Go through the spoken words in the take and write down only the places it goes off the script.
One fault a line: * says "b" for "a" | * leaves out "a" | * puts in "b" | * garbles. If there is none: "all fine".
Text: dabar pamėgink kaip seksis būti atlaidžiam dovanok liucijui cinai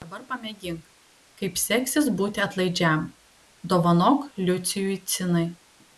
all fine